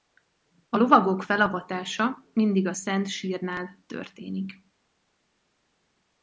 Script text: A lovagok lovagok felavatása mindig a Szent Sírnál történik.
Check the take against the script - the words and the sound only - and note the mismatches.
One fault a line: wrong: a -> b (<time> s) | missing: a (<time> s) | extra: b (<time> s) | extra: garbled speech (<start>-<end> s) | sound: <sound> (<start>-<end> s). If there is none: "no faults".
missing: lovagok (1.2 s)